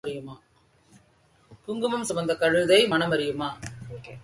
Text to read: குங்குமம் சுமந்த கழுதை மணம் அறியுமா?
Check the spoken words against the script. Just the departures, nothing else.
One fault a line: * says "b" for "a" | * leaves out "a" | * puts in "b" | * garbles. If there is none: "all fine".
all fine